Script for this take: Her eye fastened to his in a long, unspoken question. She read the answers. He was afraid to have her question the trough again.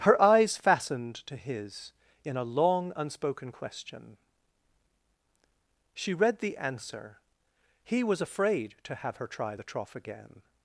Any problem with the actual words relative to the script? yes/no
yes